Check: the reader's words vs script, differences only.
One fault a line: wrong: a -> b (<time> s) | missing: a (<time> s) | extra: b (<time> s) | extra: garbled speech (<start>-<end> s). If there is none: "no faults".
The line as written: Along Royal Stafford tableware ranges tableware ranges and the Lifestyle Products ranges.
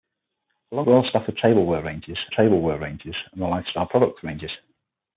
no faults